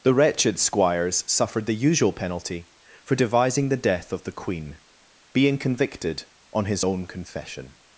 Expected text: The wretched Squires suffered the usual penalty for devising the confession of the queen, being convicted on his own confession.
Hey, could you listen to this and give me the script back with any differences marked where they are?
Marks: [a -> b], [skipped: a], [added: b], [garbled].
The wretched Squires suffered the usual penalty for devising the [confession -> death] of the queen, being convicted on his own confession.